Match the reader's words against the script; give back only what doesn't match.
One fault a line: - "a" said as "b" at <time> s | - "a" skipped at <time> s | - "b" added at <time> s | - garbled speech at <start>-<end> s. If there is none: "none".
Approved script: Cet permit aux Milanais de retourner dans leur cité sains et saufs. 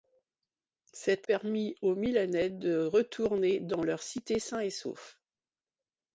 none